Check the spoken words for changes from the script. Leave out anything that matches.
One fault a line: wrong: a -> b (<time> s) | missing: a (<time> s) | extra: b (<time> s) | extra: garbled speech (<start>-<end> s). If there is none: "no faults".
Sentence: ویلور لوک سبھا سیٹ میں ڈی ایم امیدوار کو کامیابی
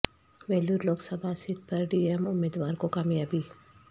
wrong: میں -> پر (1.7 s)